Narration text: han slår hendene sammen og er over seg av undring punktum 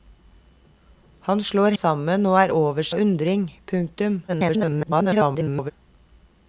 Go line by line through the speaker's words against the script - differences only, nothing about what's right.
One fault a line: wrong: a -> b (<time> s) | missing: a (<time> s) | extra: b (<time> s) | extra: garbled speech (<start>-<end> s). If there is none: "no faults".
missing: hendene (1.8 s)
missing: seg (2.9 s)
extra: garbled speech (4.3-5.7 s)